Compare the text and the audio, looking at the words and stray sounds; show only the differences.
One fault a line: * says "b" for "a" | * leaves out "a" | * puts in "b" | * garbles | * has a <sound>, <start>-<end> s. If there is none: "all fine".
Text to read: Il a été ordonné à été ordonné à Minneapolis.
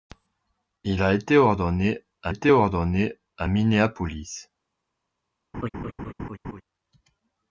* has a laugh, 5.5-6.6 s